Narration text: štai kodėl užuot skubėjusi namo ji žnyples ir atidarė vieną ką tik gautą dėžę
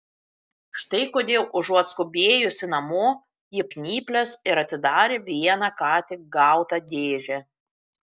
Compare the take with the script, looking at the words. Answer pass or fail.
pass